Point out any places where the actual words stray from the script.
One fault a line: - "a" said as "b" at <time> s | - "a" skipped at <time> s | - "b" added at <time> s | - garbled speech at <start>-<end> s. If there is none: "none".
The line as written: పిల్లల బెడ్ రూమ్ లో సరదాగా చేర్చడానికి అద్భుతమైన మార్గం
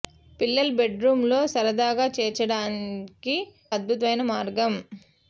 none